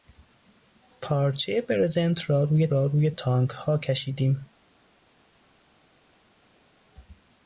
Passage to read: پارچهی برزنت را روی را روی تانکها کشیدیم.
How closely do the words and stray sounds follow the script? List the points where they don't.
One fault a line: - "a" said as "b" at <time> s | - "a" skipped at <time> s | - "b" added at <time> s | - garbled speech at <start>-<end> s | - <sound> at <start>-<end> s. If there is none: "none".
none